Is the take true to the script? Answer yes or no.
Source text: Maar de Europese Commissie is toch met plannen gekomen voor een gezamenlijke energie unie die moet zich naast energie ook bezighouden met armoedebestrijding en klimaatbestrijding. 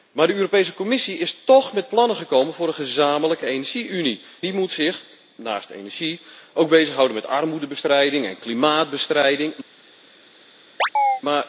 yes